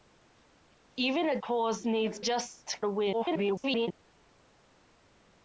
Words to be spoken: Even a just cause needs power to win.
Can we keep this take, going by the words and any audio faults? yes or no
no